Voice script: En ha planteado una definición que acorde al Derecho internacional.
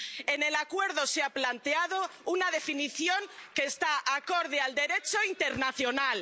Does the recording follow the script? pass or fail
fail